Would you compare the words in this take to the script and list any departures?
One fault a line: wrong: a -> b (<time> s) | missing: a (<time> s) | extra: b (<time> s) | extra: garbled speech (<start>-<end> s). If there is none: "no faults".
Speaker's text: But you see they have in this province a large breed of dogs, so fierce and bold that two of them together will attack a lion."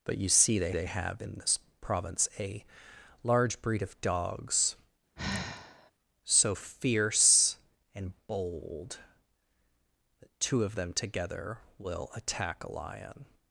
extra: they (0.7 s)